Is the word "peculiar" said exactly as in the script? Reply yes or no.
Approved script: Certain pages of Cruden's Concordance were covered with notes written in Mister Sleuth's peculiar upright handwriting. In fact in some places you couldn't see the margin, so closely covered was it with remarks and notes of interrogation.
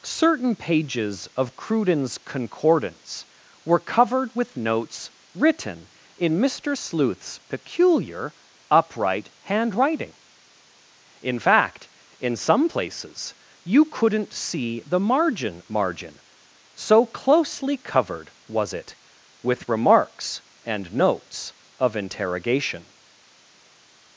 yes